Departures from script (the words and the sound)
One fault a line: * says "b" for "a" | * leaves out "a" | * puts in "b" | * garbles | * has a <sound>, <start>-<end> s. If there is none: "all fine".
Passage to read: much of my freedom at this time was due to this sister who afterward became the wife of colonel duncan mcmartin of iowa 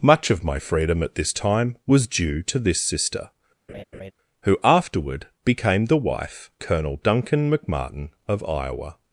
* has a laugh, 3.7-4.1 s
* leaves out "of"